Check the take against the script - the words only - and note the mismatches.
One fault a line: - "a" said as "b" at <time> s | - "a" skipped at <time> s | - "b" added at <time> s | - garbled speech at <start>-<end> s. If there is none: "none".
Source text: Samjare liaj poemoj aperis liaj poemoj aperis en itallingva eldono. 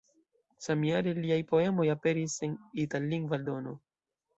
- "liaj poemoj aperis" skipped at 2.4 s